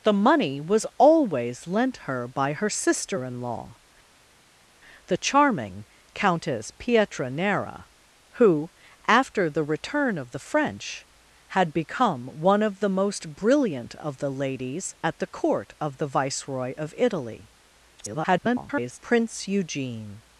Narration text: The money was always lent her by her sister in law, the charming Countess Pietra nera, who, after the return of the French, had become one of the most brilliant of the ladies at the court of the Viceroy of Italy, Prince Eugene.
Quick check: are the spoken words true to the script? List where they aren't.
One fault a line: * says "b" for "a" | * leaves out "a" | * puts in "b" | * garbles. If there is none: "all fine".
* garbles